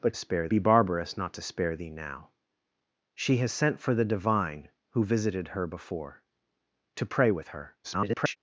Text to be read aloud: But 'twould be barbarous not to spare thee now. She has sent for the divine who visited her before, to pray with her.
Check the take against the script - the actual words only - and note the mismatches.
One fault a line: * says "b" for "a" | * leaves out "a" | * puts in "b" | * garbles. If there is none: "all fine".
* says "spare" for "twould"
* garbles